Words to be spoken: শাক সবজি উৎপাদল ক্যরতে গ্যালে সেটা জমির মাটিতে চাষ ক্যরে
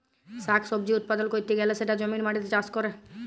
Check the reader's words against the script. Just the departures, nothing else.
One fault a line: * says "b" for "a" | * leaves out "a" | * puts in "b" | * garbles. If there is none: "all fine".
all fine